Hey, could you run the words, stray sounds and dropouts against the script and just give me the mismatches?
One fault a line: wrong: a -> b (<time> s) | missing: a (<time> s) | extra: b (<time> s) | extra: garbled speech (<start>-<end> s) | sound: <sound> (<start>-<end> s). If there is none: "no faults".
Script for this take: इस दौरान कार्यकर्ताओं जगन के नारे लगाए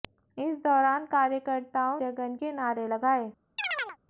sound: chirp (3.6-4.0 s)